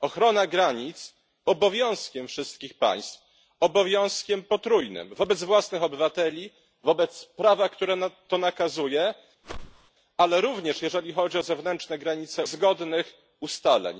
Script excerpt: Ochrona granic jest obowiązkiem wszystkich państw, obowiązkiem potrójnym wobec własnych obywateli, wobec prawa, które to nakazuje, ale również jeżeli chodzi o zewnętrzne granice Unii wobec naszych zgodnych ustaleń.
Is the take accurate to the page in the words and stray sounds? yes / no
no